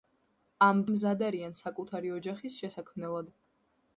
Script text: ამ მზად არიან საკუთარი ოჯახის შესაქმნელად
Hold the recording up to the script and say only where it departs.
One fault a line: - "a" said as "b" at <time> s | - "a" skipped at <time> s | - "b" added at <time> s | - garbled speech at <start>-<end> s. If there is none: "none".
none